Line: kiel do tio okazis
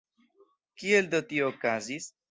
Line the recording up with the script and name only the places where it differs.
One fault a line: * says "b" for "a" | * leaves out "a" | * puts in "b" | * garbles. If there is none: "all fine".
all fine